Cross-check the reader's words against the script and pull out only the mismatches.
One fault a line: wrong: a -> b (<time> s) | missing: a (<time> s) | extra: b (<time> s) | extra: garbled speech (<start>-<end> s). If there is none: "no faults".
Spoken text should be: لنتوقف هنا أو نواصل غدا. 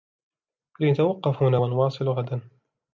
wrong: أو -> و (1.5 s)